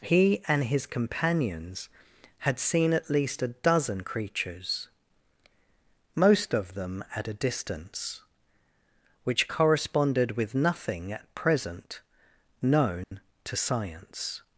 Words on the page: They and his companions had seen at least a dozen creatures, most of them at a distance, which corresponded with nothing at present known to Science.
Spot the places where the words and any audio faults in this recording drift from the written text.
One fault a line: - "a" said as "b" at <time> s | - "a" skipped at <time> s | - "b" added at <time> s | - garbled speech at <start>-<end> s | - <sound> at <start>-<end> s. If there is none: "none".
- "They" said as "He" at 0.0 s
- dropout at 13.0-13.1 s